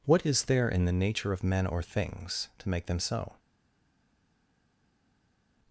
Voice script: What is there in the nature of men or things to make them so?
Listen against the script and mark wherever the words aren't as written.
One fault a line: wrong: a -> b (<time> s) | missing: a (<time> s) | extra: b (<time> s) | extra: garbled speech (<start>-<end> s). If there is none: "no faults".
no faults